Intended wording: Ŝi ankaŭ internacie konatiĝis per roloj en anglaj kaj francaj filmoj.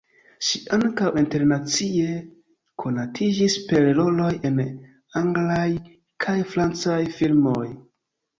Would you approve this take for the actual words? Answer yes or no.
yes